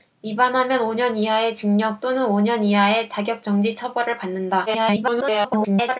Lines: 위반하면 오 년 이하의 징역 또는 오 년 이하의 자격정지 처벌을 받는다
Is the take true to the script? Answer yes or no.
no